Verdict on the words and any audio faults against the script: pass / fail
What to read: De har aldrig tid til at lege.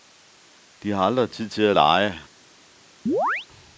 fail